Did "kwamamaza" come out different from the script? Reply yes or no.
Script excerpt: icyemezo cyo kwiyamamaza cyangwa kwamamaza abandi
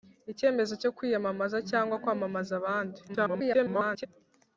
no